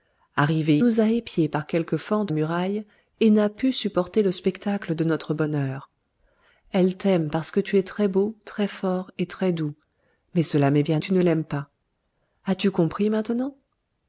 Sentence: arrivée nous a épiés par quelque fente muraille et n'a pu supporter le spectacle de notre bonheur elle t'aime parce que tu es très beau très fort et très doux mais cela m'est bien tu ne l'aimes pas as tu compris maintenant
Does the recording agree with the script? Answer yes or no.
yes